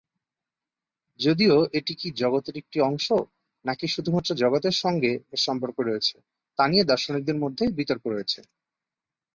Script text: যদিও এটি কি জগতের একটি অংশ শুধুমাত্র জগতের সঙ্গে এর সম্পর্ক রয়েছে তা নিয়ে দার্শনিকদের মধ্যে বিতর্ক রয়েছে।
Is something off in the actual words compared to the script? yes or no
yes